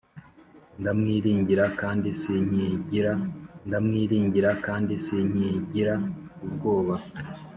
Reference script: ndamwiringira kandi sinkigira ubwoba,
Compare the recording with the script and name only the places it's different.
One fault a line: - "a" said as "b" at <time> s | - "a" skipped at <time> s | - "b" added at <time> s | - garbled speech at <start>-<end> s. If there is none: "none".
- "ndamwiringira kandi sinkigira" added at 3.7 s